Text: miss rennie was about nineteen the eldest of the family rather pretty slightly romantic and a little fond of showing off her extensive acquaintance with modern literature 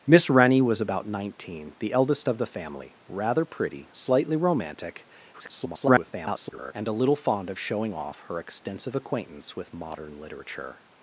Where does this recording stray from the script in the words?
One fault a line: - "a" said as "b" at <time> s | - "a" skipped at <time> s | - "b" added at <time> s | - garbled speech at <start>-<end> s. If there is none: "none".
- garbled speech at 5.3-6.7 s